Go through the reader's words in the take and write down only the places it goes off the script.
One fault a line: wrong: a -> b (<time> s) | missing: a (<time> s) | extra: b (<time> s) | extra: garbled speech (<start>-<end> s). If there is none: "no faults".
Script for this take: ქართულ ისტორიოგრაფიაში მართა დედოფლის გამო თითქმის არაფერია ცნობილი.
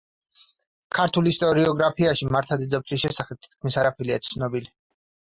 wrong: გამო -> შესახებ (3.0 s)